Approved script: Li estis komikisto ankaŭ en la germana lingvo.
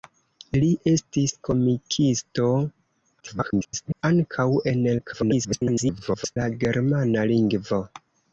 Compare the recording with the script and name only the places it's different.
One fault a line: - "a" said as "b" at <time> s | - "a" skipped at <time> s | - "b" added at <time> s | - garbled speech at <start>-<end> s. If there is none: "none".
- garbled speech at 3.2-4.0 s
- garbled speech at 5.0-6.4 s